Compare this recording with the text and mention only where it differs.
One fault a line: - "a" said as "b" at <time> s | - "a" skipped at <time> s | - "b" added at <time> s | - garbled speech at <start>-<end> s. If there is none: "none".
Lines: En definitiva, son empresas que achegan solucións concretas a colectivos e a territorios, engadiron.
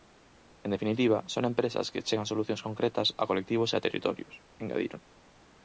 none